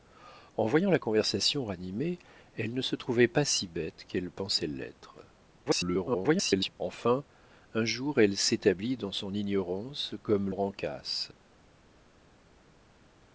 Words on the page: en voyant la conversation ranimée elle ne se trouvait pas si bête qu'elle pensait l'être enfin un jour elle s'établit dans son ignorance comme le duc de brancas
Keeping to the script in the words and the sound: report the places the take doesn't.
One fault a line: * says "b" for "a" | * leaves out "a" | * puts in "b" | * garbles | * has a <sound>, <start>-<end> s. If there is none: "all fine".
* garbles
* leaves out "le duc de"